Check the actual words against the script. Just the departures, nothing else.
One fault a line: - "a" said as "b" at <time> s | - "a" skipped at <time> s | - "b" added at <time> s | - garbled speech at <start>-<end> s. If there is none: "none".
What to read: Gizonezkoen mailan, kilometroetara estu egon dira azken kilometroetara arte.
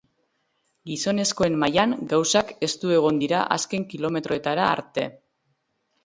- "kilometroetara" said as "gauzak" at 2.1 s